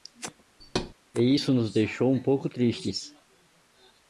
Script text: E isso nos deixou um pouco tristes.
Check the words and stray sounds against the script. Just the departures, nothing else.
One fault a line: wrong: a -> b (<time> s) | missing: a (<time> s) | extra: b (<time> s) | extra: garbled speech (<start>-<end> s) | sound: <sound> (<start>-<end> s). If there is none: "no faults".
sound: thud (0.6-0.9 s)